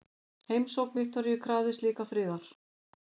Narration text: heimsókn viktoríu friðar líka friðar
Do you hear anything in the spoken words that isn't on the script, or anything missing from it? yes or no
yes